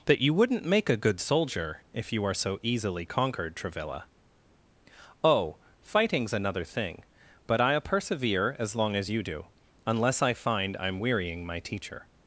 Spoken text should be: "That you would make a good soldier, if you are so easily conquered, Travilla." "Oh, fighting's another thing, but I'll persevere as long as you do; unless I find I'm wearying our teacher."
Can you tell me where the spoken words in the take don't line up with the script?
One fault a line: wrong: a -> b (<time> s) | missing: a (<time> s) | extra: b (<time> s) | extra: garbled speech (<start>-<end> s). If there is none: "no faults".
wrong: would -> wouldn't (0.3 s)
wrong: our -> my (11.4 s)